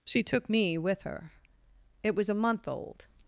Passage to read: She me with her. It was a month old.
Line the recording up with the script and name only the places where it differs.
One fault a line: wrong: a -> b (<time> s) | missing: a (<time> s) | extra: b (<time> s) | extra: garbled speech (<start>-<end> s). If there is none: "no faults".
extra: took (0.2 s)